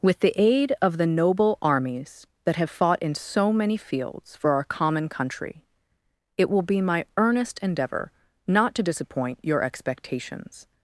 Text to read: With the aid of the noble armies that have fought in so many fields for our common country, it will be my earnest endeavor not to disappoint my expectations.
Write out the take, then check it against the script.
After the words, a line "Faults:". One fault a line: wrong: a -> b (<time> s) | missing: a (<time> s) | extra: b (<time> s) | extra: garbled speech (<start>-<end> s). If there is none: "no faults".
With the aid of the noble armies that have fought in so many fields for our common country, it will be my earnest endeavor not to disappoint your expectations.
Faults:
wrong: my -> your (9.4 s)